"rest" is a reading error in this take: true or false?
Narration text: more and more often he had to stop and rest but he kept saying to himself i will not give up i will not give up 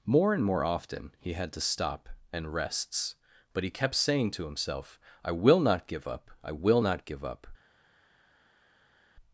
true